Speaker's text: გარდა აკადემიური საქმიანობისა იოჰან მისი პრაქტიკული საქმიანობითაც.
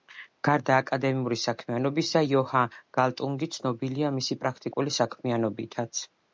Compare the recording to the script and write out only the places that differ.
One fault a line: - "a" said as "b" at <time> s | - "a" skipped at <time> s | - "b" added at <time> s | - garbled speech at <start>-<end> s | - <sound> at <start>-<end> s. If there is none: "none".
- "გალტუნგი ცნობილია" added at 3.0 s